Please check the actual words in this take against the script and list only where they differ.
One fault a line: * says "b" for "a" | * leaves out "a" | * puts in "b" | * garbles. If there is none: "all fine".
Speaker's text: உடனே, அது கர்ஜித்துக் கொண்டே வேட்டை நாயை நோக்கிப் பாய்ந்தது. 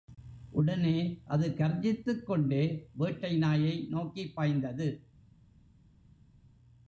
all fine